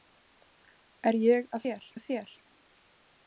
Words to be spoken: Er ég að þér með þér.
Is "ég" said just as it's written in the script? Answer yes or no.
yes